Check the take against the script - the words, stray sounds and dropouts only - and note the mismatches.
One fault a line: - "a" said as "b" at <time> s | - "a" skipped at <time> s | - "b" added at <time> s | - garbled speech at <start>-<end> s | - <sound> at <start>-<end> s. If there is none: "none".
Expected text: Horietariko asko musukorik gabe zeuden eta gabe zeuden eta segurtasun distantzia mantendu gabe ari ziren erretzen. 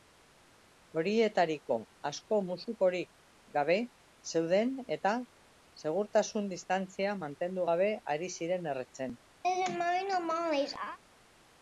- "gabe zeuden eta" skipped at 5.1 s
- laugh at 9.4-11.0 s